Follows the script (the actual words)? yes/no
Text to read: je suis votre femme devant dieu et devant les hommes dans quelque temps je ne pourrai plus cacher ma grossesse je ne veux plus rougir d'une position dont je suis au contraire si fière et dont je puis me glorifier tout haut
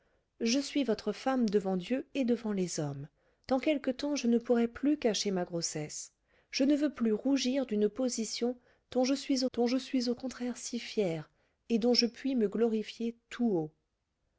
no